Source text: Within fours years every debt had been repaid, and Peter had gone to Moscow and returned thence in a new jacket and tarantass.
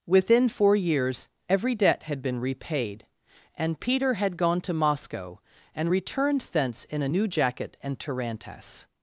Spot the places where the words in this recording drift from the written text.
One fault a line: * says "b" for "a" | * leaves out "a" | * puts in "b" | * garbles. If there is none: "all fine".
* says "four" for "fours"